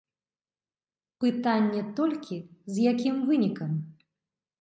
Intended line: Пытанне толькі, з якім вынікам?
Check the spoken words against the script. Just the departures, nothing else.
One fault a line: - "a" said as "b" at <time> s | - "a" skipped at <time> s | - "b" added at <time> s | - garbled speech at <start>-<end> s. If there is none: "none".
none